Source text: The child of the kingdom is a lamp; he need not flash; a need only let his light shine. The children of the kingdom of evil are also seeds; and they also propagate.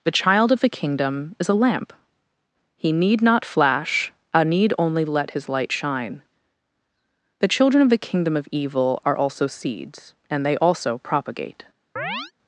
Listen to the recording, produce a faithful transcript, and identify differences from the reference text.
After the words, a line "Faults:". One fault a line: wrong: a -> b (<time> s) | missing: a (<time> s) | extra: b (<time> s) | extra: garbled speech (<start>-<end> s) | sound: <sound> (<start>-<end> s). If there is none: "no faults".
The child of the kingdom is a lamp; he need not flash; a need only let his light shine. The children of the kingdom of evil are also seeds; and they also propagate.
Faults:
sound: chirp (12.0-12.3 s)